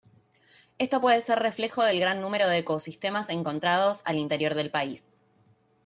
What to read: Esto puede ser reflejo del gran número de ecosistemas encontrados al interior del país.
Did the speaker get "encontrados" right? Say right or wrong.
right